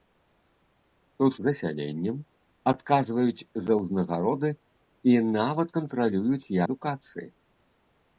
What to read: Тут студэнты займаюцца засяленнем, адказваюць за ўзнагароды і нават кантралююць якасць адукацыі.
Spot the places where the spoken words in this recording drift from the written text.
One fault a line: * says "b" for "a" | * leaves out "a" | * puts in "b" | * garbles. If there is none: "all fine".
* leaves out "студэнты займаюцца"
* leaves out "якасць"